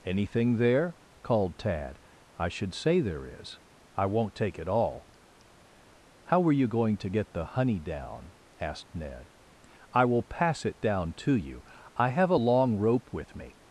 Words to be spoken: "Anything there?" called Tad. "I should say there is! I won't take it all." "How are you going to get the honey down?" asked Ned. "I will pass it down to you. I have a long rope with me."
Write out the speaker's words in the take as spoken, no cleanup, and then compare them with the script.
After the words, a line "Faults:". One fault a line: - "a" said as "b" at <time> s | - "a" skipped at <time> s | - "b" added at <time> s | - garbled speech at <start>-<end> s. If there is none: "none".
"Anything there?" called Tad. "I should say there is! I won't take it all." "How were you going to get the honey down?" asked Ned. "I will pass it down to you. I have a long rope with me."
Faults:
- "are" said as "were" at 6.4 s